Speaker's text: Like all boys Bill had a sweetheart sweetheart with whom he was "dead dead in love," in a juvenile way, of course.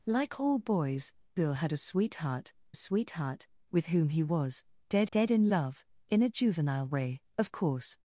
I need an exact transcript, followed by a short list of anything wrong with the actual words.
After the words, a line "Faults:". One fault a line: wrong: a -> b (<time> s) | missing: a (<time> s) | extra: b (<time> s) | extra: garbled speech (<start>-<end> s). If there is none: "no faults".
Like all boys Bill had a sweetheart sweetheart with whom he was "dead dead in love," in a juvenile way, of course.
Faults:
no faults